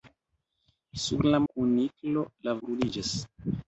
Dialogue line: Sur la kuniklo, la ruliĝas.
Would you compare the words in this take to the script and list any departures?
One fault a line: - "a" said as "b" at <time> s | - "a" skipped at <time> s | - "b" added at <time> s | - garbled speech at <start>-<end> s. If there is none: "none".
none